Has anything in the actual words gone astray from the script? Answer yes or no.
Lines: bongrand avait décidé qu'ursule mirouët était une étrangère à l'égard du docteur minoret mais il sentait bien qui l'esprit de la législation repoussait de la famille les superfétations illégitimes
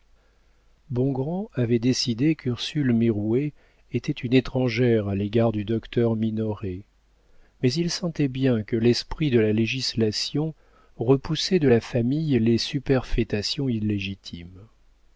yes